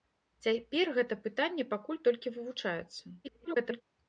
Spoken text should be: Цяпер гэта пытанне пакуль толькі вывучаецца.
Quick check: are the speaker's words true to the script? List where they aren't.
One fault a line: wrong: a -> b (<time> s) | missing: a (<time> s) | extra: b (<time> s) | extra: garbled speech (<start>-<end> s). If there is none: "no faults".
extra: garbled speech (3.2-3.8 s)